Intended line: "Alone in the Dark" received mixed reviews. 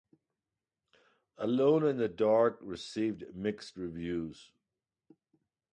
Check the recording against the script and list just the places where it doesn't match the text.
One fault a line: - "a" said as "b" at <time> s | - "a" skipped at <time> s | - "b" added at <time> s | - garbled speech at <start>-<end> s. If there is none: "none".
none